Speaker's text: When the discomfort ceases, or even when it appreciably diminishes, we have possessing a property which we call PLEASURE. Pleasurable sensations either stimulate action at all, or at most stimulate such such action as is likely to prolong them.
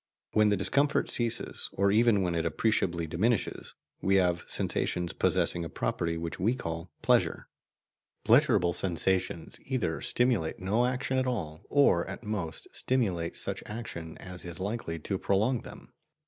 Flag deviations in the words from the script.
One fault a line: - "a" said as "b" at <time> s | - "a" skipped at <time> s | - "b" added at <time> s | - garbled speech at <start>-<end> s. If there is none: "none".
- "sensations" added at 4.5 s
- "no" added at 10.6 s
- "such" skipped at 13.6 s